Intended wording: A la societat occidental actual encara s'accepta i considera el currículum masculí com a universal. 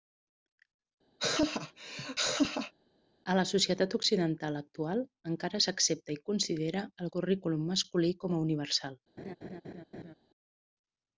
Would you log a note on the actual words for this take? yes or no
no